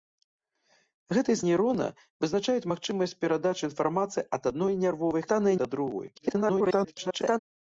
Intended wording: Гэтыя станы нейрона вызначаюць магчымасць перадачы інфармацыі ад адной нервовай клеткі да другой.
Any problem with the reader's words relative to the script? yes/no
yes